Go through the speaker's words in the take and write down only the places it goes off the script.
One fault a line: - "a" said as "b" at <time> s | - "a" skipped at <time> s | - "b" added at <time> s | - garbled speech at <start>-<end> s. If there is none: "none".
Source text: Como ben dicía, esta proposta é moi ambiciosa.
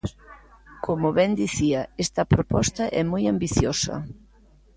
none